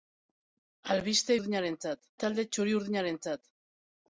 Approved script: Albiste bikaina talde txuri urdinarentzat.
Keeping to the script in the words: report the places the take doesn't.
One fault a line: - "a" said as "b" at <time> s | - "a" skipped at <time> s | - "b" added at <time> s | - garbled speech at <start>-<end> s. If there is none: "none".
- "bikaina" said as "urdinarentzat" at 1.4 s